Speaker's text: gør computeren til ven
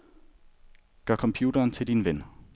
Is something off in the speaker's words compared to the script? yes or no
yes